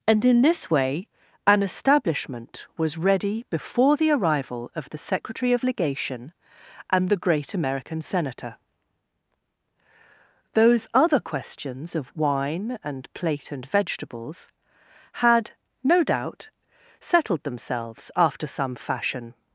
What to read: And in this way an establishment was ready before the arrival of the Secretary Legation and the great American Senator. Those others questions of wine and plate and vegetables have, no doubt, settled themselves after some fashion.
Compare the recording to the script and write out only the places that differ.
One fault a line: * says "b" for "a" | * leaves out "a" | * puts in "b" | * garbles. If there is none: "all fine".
* puts in "of"
* says "other" for "others"
* says "had" for "have"